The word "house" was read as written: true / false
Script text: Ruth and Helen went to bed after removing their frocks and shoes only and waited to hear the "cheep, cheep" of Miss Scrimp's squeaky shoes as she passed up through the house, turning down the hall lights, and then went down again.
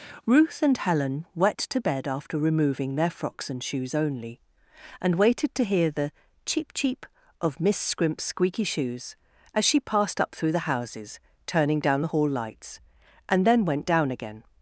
false